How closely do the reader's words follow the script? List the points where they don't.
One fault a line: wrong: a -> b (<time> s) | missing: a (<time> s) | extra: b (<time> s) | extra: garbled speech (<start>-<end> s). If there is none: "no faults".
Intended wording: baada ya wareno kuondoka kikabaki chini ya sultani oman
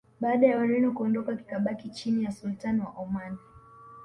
extra: wa (2.8 s)